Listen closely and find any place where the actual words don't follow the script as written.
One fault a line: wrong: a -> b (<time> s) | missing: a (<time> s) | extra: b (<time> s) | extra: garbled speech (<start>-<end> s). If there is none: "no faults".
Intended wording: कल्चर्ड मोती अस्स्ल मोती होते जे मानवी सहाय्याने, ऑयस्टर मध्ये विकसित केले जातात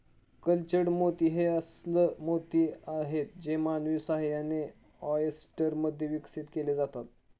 extra: हे (1.3 s)
wrong: होते -> आहेत (2.9 s)